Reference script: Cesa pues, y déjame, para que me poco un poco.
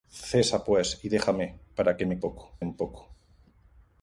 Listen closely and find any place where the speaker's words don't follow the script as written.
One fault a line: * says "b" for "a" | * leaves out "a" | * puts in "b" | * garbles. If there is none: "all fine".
all fine